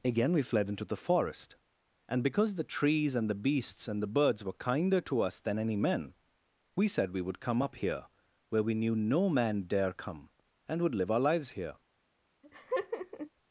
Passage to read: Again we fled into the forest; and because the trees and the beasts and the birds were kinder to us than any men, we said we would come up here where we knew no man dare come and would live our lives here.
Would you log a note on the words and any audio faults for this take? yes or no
yes